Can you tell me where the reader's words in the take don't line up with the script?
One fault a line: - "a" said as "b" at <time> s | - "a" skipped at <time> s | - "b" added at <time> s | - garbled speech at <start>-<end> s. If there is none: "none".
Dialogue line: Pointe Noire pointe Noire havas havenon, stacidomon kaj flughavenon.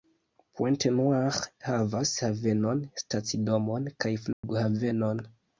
- "pointe Noire" skipped at 1.4 s